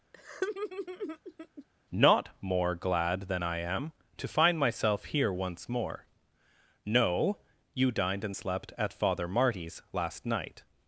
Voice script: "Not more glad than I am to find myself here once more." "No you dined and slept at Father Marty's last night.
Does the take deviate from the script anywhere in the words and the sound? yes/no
yes